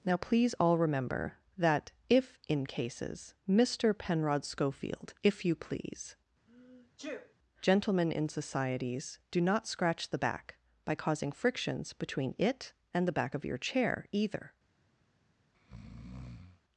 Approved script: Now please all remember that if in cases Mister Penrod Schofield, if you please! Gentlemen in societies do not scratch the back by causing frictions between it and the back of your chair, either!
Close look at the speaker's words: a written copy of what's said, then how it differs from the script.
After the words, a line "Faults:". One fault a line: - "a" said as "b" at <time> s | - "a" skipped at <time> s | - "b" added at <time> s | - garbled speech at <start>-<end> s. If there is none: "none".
Now please all remember that if in cases Mister Penrod Schofield, if you please! Gentlemen in societies do not scratch the back by causing frictions between it and the back of your chair, either!
Faults:
none